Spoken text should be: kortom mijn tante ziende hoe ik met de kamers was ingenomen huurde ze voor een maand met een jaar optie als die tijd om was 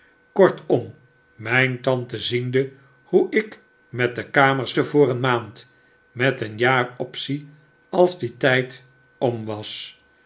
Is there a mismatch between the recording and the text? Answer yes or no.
yes